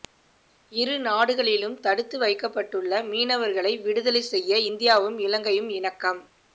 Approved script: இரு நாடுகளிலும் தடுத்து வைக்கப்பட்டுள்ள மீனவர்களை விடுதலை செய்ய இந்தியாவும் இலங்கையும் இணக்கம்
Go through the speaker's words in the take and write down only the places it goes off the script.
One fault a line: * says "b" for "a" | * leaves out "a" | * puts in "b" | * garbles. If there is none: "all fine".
all fine